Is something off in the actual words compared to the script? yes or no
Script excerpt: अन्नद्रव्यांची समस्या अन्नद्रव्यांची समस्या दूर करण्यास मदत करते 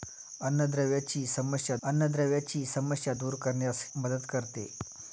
no